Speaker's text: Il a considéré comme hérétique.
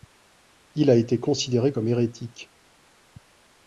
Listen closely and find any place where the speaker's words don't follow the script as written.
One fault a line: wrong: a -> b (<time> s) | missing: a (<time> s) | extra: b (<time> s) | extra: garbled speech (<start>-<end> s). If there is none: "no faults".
extra: été (0.9 s)